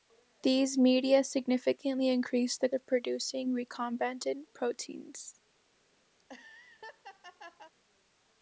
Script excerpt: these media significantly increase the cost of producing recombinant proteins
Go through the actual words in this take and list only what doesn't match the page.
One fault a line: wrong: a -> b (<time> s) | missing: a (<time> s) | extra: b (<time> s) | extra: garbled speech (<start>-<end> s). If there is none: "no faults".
missing: cost (2.7 s)